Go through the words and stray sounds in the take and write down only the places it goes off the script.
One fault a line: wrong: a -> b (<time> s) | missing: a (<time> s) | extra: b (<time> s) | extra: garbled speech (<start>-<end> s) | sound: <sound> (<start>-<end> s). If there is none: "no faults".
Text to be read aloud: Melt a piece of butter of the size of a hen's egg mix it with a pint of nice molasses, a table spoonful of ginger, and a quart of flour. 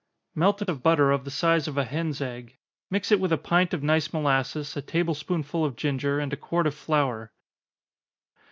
missing: piece (0.7 s)